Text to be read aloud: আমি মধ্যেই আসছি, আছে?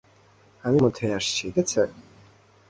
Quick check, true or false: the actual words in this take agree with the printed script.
true